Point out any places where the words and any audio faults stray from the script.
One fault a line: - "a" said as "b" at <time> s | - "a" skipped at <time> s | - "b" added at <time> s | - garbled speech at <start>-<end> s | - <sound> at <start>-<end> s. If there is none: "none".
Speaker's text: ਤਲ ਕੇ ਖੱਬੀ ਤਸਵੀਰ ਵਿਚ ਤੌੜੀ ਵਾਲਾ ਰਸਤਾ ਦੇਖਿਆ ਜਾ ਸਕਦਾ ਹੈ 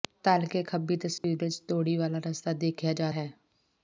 - dropout at 1.2-1.2 s
- "ਸਕਦਾ" skipped at 3.1 s